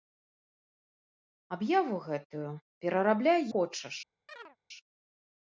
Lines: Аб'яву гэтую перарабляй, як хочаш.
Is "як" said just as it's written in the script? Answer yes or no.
no